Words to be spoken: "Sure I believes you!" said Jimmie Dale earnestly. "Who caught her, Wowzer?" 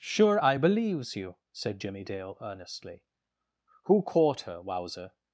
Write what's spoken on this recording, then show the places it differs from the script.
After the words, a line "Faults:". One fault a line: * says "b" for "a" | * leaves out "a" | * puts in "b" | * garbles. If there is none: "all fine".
"Sure I believes you!" said Jimmie Dale earnestly. "Who caught her, Wowzer?"
Faults:
all fine